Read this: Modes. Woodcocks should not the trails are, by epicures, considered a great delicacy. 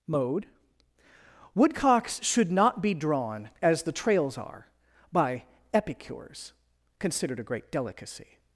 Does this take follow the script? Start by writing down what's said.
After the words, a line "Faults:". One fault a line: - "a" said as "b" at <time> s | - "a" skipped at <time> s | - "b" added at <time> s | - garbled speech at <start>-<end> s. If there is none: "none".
Mode. Woodcocks should not be drawn, as the trails are, by epicures, considered a great delicacy.
Faults:
- "Modes" said as "Mode" at 0.1 s
- "be drawn as" added at 2.8 s